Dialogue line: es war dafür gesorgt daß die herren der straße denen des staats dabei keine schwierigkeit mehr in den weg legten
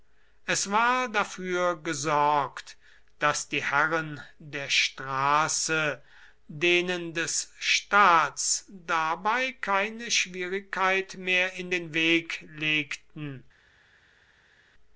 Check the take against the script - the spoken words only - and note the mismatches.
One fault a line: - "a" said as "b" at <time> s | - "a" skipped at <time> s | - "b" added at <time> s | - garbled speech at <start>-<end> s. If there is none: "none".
none